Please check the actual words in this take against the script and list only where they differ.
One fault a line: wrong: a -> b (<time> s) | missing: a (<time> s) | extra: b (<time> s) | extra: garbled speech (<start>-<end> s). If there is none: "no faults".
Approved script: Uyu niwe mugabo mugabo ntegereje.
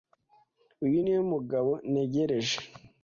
missing: mugabo (1.7 s)